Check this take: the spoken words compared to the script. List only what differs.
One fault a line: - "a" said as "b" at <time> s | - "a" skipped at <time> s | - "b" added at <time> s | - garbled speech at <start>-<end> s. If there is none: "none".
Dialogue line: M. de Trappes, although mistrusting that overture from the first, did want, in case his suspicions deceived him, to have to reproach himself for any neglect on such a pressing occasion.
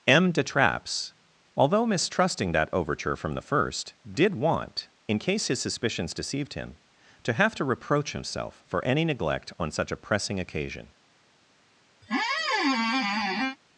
none